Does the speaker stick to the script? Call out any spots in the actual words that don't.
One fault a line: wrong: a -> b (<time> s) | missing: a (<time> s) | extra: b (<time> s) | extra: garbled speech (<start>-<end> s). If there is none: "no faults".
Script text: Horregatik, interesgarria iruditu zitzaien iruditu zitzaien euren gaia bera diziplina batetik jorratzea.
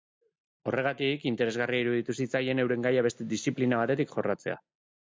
missing: iruditu zitzaien (2.6 s)
wrong: bera -> beste (3.1 s)